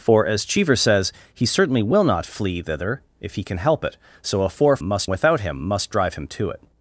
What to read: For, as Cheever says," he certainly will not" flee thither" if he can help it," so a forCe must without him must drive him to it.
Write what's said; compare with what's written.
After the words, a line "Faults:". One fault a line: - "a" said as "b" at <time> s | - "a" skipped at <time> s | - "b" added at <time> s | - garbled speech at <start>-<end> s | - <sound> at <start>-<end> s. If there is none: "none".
For, as Cheever says," he certainly will not" flee thither" if he can help it," so a forCe must without him must drive him to it.
Faults:
none